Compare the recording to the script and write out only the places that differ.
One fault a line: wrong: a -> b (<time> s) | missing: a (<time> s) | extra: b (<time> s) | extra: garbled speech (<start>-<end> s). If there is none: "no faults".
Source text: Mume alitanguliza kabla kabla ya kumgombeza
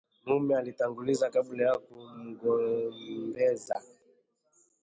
missing: kabla (1.6 s)